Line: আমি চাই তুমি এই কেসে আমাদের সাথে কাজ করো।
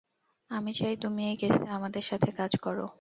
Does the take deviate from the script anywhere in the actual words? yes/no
no